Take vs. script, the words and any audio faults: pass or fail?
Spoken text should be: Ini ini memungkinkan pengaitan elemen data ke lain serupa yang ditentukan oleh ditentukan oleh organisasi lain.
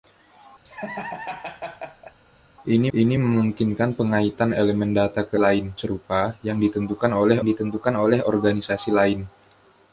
fail